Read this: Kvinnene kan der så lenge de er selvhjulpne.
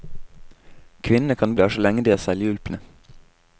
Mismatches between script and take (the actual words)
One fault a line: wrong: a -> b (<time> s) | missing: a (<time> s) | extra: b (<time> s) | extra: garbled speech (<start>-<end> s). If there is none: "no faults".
no faults